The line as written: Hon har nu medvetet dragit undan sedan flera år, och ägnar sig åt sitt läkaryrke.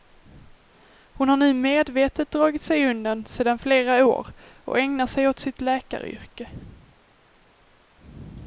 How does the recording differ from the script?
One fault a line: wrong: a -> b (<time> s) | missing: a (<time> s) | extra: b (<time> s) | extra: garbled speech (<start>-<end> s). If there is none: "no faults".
extra: sig (2.6 s)